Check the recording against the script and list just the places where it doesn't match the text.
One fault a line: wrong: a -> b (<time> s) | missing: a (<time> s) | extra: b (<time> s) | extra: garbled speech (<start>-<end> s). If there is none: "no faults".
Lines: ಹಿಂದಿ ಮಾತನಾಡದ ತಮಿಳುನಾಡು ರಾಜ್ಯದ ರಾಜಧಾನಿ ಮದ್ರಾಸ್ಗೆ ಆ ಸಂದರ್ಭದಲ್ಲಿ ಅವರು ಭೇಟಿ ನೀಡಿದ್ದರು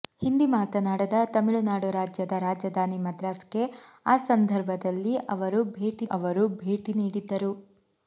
extra: ಅವರು ಭೇಟಿ (6.1 s)